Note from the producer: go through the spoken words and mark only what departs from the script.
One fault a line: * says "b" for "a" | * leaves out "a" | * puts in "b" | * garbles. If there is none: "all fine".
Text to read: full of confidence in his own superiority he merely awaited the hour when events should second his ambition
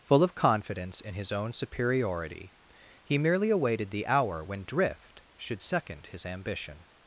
* says "drift" for "events"